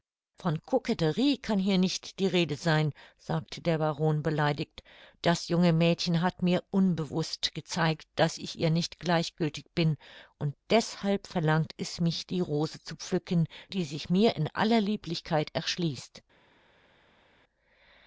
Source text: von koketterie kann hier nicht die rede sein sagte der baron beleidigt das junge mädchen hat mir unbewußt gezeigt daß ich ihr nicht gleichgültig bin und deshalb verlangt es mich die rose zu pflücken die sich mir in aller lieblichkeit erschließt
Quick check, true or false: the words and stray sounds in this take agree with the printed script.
true